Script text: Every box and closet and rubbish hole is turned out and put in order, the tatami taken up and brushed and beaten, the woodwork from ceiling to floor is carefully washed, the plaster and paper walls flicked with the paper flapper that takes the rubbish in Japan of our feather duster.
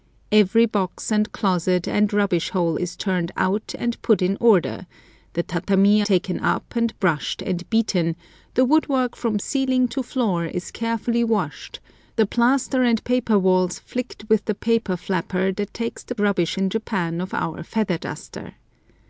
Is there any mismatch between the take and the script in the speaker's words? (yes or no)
no